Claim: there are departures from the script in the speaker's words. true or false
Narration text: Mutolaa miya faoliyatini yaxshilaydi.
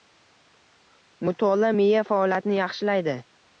false